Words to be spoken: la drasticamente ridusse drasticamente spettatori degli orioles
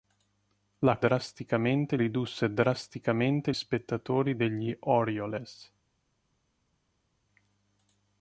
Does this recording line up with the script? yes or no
yes